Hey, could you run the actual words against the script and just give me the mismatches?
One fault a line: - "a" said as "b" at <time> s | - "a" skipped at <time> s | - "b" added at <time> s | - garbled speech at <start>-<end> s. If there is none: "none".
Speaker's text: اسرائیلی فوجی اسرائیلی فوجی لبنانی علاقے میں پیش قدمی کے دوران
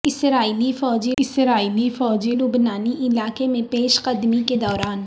none